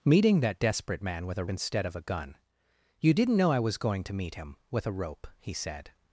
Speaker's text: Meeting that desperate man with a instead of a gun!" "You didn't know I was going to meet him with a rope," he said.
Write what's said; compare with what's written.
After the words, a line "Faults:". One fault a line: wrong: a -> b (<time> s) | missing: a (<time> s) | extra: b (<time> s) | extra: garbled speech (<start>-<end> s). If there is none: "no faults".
Meeting that desperate man with a instead of a gun!" "You didn't know I was going to meet him with a rope," he said.
Faults:
no faults